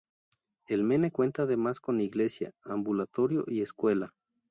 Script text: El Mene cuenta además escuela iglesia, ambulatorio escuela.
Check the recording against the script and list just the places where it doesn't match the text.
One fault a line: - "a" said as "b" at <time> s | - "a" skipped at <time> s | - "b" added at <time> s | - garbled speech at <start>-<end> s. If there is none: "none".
- "escuela" said as "con" at 1.8 s
- "y" added at 3.5 s